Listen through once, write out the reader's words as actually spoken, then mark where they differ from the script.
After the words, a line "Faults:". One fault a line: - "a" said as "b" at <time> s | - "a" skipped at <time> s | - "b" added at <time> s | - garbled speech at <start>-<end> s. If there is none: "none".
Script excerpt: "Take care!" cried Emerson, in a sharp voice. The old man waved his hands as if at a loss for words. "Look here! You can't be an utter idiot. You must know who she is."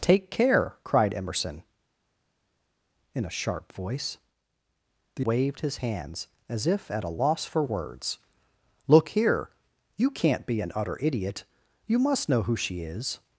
"Take care!" cried Emerson, in a sharp voice. The waved his hands as if at a loss for words. "Look here! You can't be an utter idiot. You must know who she is."
Faults:
- "old man" skipped at 5.3 s